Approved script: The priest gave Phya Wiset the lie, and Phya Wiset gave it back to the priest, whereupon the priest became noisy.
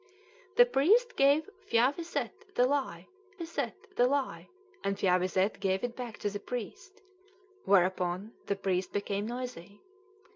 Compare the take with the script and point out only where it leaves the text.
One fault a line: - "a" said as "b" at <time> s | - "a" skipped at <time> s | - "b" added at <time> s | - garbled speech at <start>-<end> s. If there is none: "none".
- "Wiset the lie" added at 3.4 s